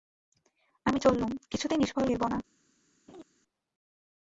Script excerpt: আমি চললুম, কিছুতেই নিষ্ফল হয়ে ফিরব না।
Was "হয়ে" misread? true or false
true